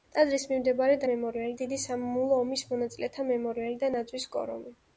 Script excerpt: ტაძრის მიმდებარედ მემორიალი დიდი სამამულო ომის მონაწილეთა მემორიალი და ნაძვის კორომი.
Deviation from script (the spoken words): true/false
false